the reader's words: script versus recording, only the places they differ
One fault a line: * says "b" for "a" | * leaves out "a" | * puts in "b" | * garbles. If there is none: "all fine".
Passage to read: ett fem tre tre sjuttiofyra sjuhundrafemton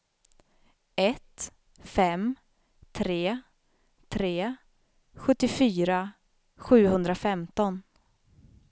all fine